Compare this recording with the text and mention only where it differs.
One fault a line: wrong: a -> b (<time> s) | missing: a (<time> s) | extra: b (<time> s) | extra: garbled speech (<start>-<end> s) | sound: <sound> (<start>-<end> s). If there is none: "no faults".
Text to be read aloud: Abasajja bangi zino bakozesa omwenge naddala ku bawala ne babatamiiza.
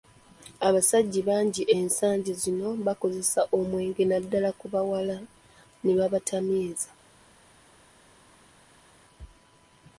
extra: ensangi (1.8 s)